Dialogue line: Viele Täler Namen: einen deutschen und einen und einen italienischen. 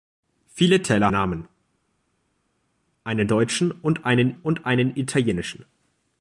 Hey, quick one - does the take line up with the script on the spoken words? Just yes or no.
yes